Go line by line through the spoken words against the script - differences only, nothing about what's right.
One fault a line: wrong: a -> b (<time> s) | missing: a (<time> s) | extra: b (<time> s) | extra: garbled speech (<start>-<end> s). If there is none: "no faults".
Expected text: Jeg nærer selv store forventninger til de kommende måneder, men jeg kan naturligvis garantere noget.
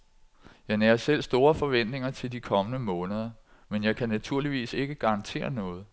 extra: ikke (4.7 s)